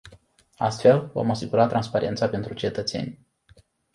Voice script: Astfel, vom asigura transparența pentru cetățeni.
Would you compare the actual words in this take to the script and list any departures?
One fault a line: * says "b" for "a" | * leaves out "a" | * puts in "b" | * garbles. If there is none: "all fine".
all fine